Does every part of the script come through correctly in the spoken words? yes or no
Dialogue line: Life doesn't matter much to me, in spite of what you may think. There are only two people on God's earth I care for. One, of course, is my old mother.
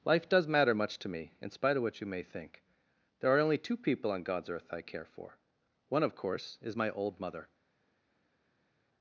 no